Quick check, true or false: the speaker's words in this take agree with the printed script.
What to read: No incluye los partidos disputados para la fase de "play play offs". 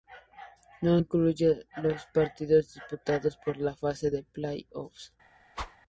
false